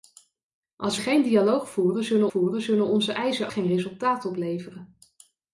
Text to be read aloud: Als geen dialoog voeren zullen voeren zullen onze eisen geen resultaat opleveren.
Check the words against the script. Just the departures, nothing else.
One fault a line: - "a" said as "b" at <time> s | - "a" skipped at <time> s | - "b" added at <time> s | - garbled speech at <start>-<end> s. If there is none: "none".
none